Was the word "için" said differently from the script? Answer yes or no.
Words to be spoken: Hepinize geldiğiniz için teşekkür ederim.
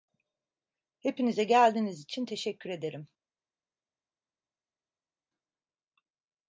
no